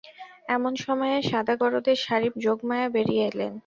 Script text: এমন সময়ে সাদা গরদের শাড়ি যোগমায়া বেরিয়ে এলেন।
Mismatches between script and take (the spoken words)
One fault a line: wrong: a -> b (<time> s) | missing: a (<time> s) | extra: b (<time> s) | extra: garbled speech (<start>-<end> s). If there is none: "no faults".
no faults